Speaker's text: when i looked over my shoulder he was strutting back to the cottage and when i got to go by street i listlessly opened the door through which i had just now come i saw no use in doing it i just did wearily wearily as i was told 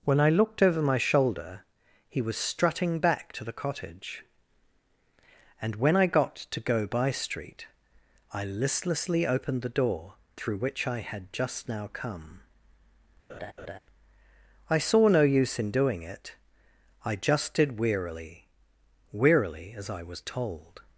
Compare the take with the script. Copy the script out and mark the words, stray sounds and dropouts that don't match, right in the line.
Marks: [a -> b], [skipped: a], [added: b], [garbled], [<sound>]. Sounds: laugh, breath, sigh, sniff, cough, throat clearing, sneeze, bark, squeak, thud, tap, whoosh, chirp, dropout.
when i looked over my shoulder he was strutting back to the cottage and when i got to go by street i listlessly opened the door through which i had just now come [laugh] i saw no use in doing it i just did wearily wearily as i was told